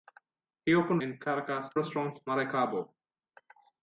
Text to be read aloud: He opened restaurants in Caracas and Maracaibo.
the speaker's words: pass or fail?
fail